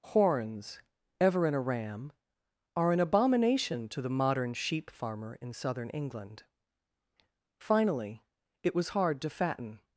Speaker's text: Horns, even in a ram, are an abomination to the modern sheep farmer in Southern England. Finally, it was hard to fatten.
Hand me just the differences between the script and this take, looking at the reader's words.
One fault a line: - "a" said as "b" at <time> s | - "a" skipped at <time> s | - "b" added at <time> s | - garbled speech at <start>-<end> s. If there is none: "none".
- "even" said as "ever" at 1.2 s